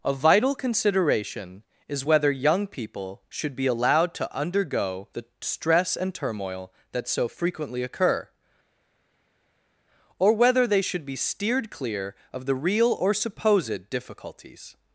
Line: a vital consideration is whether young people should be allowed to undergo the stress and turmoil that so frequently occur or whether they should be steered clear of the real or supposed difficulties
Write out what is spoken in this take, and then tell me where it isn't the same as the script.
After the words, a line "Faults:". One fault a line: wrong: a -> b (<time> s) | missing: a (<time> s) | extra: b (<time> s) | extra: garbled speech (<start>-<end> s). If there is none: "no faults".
a vital consideration is whether young people should be allowed to undergo the stress and turmoil that so frequently occur or whether they should be steered clear of the real or supposed difficulties
Faults:
no faults